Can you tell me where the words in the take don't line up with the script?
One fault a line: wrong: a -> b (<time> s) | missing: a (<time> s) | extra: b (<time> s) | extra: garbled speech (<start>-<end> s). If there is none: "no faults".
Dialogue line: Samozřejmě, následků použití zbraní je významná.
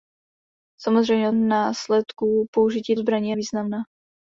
no faults